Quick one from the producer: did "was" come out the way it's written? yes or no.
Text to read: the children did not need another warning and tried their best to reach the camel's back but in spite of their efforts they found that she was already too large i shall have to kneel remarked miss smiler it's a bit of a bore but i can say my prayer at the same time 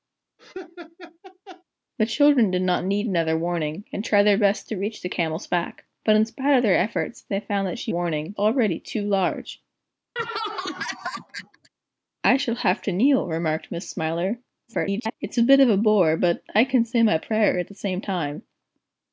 no